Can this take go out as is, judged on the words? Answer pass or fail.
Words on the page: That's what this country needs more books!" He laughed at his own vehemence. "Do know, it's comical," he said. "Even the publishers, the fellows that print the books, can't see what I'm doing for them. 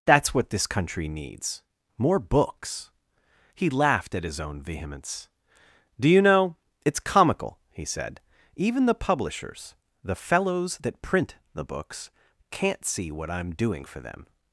fail